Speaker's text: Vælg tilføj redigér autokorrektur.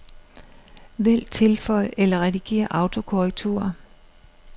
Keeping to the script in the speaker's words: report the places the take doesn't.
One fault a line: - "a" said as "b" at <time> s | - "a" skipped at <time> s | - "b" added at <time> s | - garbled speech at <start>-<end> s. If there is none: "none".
- "eller" added at 2.0 s